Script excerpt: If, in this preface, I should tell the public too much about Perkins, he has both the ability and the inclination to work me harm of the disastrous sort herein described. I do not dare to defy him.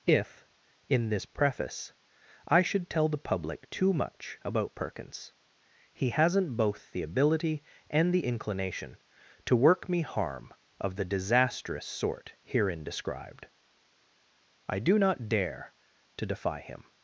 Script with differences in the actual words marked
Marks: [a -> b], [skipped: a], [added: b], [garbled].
If, in this preface, I should tell the public too much about Perkins, he [has -> hasn't] both the ability and the inclination to work me harm of the disastrous sort herein described. I do not dare to defy him.